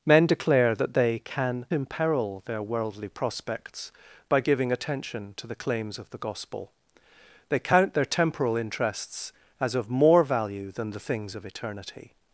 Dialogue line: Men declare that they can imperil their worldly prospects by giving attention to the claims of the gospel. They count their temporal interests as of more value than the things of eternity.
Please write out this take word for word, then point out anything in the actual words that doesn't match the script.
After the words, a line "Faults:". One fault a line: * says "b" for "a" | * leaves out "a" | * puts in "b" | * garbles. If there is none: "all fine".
Men declare that they can imperil their worldly prospects by giving attention to the claims of the gospel. They count their temporal interests as of more value than the things of eternity.
Faults:
all fine